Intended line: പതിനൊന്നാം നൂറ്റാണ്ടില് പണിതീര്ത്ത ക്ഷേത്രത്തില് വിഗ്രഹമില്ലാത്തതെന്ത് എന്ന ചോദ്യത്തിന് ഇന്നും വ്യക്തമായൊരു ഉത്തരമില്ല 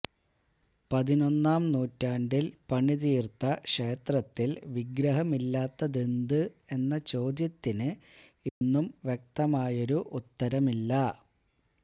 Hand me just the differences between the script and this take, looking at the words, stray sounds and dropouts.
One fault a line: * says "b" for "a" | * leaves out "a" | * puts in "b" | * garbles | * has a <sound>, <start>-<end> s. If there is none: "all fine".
* has a dropout, 8.5-8.6 s